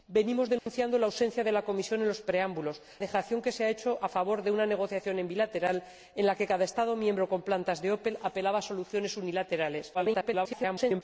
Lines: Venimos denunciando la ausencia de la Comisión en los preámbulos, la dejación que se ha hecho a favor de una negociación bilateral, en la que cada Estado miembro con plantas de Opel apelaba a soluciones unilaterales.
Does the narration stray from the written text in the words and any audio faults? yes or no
yes